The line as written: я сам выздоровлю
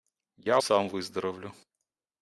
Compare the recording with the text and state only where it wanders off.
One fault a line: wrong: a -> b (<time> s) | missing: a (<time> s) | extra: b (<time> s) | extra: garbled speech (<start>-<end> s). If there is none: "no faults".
no faults